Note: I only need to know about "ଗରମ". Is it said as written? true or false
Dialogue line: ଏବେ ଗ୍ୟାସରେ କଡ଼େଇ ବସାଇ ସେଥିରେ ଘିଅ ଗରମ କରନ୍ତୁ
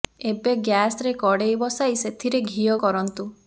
false